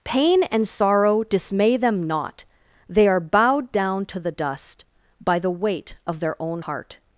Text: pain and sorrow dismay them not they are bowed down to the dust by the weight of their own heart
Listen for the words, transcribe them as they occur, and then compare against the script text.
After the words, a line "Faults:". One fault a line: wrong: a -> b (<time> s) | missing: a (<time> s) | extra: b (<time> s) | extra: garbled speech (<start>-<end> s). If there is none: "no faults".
pain and sorrow dismay them not they are bowed down to the dust by the weight of their own heart
Faults:
no faults